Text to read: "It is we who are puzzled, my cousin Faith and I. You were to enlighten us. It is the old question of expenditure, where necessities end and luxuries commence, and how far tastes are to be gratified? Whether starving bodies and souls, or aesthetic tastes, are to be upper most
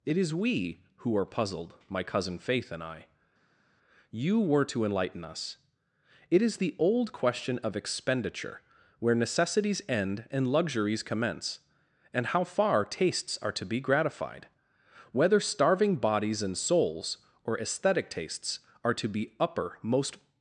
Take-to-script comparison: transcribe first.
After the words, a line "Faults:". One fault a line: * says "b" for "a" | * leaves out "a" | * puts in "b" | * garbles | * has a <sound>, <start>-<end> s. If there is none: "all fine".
"It is we who are puzzled, my cousin Faith and I. You were to enlighten us. It is the old question of expenditure, where necessities end and luxuries commence, and how far tastes are to be gratified? Whether starving bodies and souls, or aesthetic tastes, are to be upper most
Faults:
all fine